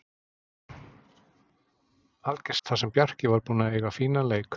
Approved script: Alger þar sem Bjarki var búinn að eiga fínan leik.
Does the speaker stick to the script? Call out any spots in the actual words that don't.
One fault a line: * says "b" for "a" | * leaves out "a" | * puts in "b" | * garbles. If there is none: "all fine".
all fine